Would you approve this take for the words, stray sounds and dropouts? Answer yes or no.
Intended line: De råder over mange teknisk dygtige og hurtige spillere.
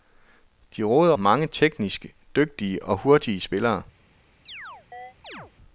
no